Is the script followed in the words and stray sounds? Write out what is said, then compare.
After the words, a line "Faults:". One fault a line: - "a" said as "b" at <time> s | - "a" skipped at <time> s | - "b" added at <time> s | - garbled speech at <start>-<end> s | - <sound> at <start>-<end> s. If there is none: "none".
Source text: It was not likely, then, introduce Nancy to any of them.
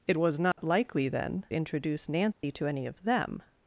It was not likely, then, introduce Nancy to any of them.
Faults:
- dropout at 0.5-0.6 s
- dropout at 2.3-2.4 s